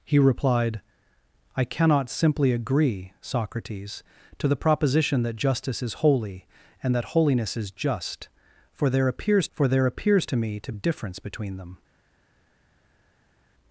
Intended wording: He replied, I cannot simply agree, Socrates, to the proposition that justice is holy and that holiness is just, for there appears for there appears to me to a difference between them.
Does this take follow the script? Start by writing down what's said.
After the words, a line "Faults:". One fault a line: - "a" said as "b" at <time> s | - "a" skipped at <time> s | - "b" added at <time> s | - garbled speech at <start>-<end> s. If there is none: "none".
He replied, I cannot simply agree, Socrates, to the proposition that justice is holy and that holiness is just, for there appears for there appears to me to a difference between them.
Faults:
none